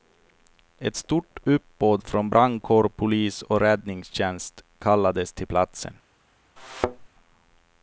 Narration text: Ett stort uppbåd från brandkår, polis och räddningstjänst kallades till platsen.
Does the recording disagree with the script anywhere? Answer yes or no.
no